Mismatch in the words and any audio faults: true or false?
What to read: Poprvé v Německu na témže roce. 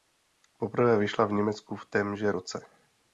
true